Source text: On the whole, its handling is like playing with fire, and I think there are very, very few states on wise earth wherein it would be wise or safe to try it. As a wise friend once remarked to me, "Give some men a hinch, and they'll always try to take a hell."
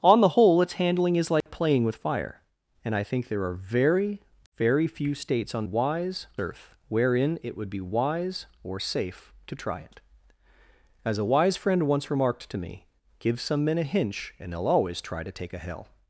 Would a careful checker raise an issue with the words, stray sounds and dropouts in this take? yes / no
yes